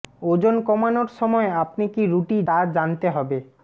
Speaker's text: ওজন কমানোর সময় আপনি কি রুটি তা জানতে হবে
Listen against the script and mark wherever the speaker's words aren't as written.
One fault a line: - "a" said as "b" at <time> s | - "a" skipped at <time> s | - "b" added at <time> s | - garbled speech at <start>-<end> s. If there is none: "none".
none